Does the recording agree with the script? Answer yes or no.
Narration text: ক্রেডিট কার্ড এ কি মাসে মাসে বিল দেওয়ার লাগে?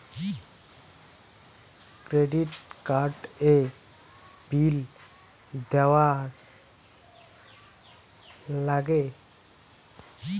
no